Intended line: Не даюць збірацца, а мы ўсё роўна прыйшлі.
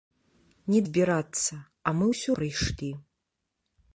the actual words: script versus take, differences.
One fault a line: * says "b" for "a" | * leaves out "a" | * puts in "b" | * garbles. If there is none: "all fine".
* leaves out "даюць"
* leaves out "роўна"